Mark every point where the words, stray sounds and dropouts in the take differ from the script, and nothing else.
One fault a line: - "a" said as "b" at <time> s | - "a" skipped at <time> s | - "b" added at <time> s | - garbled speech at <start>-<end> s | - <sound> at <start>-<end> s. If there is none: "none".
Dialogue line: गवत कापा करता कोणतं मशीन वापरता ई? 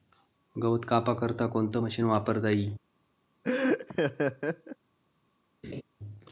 - laugh at 3.4-4.8 s
- laugh at 5.6-5.8 s